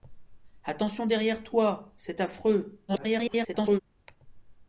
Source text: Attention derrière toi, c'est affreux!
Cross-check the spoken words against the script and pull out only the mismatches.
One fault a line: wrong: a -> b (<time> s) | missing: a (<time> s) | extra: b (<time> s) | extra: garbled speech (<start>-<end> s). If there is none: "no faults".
extra: garbled speech (2.9-3.8 s)